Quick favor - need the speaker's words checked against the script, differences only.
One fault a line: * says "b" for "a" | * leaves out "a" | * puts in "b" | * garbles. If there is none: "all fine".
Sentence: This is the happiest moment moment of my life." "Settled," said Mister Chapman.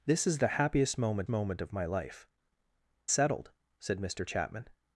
all fine